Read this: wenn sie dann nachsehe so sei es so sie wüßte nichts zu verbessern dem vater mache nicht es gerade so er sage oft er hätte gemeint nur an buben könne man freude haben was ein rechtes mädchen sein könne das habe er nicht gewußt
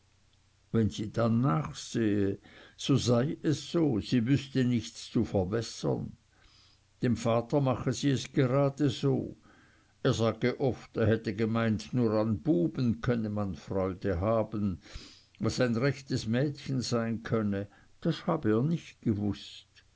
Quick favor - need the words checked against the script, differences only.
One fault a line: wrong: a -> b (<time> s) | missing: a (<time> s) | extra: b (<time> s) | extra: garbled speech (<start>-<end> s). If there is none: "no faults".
wrong: nicht -> sie (7.9 s)